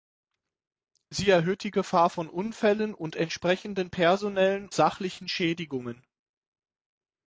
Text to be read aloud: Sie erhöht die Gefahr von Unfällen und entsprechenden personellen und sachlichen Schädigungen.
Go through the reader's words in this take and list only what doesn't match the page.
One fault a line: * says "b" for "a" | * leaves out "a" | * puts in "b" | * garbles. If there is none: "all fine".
* leaves out "und"